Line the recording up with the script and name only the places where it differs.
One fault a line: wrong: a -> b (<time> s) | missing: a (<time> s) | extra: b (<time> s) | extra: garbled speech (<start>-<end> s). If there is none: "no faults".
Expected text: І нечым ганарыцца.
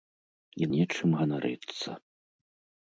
no faults